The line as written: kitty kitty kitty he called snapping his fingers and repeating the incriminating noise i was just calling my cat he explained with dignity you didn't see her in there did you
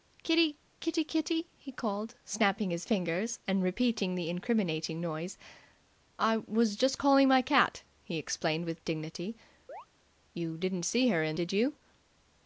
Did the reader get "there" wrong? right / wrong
wrong